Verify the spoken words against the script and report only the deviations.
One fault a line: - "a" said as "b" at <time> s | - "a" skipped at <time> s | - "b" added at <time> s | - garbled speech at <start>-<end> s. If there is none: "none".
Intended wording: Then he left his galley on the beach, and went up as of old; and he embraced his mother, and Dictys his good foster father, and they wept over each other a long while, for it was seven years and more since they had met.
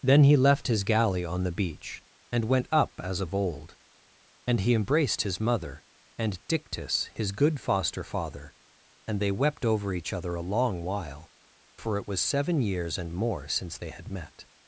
none